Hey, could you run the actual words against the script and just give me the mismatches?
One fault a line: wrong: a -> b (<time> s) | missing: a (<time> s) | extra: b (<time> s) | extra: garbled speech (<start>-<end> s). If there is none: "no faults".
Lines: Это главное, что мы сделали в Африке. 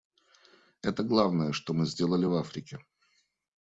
no faults